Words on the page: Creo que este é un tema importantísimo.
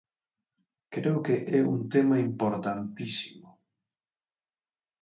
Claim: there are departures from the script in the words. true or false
true